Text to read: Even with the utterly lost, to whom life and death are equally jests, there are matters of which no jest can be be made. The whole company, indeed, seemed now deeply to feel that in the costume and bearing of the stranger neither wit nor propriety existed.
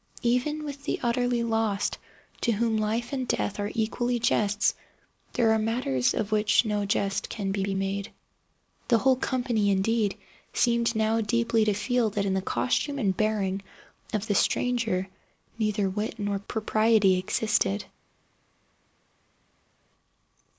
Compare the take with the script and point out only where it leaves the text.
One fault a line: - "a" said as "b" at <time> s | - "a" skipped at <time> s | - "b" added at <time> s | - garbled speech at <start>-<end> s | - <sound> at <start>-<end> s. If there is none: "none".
none